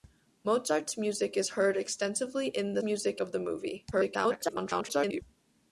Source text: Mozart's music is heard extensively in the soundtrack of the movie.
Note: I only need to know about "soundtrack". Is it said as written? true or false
false